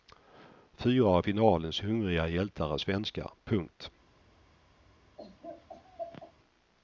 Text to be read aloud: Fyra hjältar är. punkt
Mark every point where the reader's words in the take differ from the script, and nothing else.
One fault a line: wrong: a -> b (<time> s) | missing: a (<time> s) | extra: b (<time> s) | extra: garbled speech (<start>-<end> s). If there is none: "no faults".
extra: av finalens hungriga (1.1 s)
extra: svenskar (2.7 s)